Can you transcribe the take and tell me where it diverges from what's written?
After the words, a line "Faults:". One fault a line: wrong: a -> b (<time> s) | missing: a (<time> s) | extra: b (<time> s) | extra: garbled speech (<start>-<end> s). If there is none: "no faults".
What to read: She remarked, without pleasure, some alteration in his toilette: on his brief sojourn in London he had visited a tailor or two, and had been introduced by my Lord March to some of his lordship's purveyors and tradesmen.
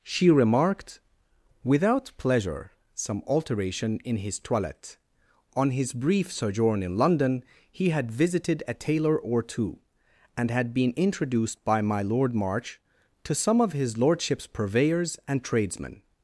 She remarked, without pleasure, some alteration in his toilette: on his brief sojourn in London he had visited a tailor or two, and had been introduced by my Lord March to some of his lordship's purveyors and tradesmen.
Faults:
no faults